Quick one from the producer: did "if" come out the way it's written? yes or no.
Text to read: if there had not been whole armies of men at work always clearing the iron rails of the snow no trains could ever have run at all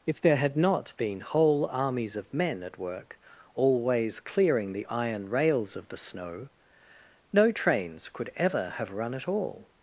yes